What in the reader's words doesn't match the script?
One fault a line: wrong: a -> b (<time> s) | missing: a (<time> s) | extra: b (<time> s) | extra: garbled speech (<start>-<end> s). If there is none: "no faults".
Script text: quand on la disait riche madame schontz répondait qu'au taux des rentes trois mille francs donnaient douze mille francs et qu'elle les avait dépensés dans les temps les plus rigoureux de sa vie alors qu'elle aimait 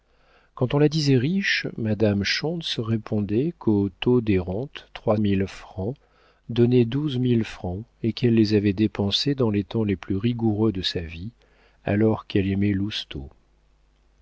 no faults